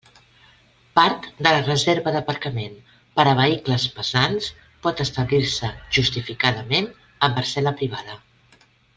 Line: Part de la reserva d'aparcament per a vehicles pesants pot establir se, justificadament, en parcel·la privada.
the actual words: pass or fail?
pass